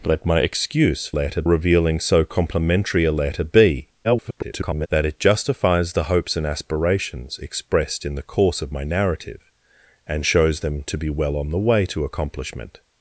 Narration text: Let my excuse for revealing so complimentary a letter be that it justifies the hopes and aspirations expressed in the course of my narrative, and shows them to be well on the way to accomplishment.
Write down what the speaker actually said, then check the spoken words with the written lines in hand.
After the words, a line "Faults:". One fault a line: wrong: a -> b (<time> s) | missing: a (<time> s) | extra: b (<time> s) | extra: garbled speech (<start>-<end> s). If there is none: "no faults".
Let my excuse letter revealing so complimentary a letter be [garbled] that it justifies the hopes and aspirations expressed in the course of my narrative, and shows them to be well on the way to accomplishment.
Faults:
wrong: for -> letter (1.1 s)
extra: garbled speech (4.0-4.9 s)